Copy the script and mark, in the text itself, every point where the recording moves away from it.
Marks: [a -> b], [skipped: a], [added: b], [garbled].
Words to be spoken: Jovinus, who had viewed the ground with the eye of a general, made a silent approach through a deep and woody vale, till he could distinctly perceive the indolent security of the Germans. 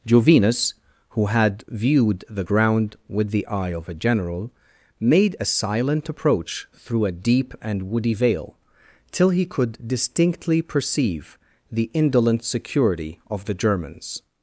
Jovinus, who had viewed the ground with the eye of a general, made a silent approach through a deep and woody vale, till he could distinctly perceive the indolent security of the Germans.